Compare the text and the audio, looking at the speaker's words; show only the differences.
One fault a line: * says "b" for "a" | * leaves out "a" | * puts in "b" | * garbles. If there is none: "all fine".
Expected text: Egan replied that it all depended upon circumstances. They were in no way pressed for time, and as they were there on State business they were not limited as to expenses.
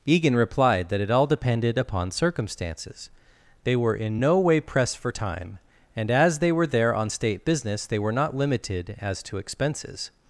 all fine